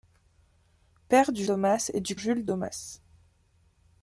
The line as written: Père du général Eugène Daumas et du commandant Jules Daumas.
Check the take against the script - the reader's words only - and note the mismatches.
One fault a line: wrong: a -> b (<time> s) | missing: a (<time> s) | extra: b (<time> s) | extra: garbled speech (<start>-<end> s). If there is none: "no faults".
missing: général Eugène (1.4 s)
missing: commandant (2.1 s)